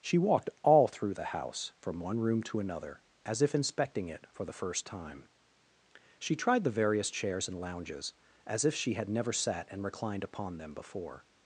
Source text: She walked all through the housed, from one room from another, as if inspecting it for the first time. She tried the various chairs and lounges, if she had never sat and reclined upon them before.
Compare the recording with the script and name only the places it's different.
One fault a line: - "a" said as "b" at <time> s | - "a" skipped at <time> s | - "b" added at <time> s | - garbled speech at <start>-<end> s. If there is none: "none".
- "housed" said as "house" at 1.2 s
- "from" said as "to" at 2.4 s
- "as" added at 8.4 s